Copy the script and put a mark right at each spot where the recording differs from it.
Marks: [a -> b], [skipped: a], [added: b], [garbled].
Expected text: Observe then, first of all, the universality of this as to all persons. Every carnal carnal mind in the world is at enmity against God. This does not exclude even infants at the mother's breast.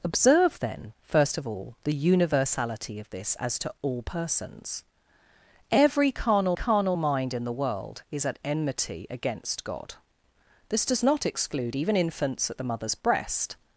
Observe then, first of all, the universality of this as to all persons. Every carnal carnal mind in the world is at enmity against God. This does not exclude even infants at the mother's breast.